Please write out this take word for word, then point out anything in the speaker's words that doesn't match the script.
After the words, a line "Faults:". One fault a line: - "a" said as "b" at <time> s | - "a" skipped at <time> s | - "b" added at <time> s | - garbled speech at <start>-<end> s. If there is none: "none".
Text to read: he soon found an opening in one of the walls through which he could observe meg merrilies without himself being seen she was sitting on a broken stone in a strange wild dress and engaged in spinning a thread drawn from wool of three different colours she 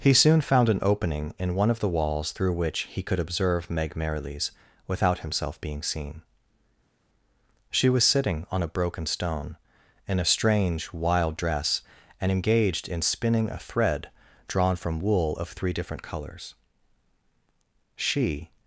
he soon found an opening in one of the walls through which he could observe meg merrilies without himself being seen she was sitting on a broken stone in a strange wild dress and engaged in spinning a thread drawn from wool of three different colours she
Faults:
none